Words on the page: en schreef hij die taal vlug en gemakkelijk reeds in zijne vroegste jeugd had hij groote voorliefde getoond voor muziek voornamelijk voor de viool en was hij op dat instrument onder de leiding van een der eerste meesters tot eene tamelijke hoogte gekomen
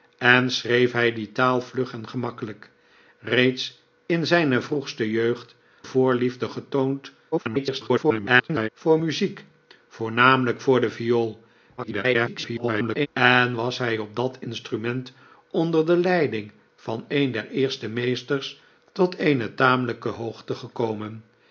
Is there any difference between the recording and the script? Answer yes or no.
yes